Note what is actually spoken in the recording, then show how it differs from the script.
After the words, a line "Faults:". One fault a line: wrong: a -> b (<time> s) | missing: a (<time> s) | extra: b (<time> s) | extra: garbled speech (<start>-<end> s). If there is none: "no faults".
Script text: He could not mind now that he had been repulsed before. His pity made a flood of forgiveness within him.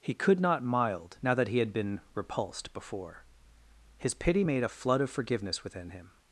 He could not mild now that he had been repulsed before. His pity made a flood of forgiveness within him.
Faults:
wrong: mind -> mild (0.6 s)